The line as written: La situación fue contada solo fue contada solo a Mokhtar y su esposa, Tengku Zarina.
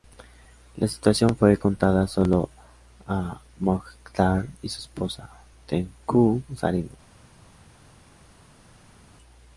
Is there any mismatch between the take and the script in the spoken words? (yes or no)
yes